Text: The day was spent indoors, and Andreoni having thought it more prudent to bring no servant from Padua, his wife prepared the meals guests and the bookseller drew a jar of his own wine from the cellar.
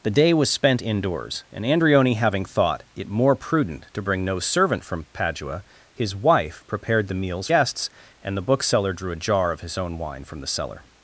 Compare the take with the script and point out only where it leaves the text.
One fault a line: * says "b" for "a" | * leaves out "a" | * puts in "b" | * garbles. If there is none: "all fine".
all fine